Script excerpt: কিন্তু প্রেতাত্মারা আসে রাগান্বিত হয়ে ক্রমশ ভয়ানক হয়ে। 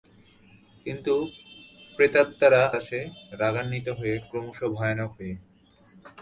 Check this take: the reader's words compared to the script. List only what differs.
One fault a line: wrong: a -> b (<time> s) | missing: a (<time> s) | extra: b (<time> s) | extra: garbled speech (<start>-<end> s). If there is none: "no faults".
no faults